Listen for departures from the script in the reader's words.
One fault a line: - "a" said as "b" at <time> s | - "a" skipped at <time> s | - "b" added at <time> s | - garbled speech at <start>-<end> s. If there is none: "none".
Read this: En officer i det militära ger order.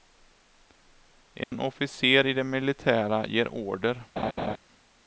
none